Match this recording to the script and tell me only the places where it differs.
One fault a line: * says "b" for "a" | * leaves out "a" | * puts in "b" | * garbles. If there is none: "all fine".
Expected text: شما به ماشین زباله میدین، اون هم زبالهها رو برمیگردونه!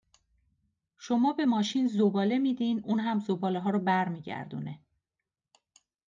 all fine